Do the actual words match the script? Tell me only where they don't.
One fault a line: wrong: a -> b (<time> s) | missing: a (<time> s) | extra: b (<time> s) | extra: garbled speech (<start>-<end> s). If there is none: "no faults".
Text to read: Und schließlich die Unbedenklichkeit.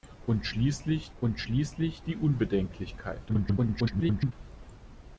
extra: und schließlich (1.2 s)
extra: garbled speech (3.3-4.3 s)